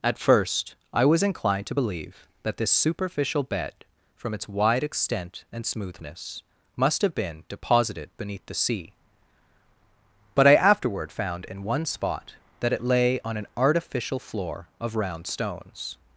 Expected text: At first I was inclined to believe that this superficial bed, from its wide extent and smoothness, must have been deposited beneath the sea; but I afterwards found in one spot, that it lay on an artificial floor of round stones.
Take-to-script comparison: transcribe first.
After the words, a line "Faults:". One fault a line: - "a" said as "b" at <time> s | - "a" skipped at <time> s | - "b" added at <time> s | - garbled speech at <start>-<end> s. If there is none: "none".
At first I was inclined to believe that this superficial bed, from its wide extent and smoothness, must have been deposited beneath the sea; but I afterward found in one spot, that it lay on an artificial floor of round stones.
Faults:
- "afterwards" said as "afterward" at 10.6 s